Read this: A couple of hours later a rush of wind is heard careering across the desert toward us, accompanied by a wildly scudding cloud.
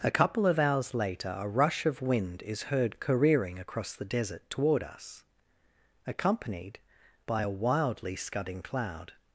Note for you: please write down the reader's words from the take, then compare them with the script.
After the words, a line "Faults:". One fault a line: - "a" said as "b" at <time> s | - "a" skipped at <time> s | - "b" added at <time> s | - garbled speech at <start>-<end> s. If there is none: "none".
A couple of hours later a rush of wind is heard careering across the desert toward us, accompanied by a wildly scudding cloud.
Faults:
none